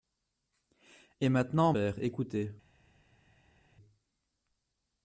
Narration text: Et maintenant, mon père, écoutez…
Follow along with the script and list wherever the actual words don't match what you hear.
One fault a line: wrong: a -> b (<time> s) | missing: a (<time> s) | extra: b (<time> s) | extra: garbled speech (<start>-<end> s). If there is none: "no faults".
missing: mon (1.7 s)